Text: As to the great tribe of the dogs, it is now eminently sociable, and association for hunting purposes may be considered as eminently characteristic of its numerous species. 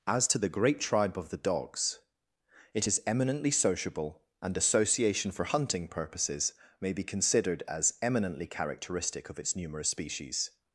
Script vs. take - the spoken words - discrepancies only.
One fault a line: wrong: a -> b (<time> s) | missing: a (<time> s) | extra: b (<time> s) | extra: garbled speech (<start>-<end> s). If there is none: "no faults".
missing: now (3.0 s)